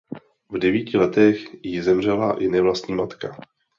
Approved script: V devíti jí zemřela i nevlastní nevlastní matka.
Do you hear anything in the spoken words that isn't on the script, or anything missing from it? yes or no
yes